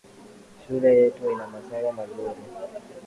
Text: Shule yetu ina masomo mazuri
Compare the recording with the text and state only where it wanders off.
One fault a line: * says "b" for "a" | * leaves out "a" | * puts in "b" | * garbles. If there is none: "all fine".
all fine